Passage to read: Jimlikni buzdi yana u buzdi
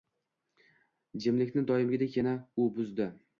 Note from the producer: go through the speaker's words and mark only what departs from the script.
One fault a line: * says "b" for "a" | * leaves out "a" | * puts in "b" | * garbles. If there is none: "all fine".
* says "doimgidek" for "buzdi"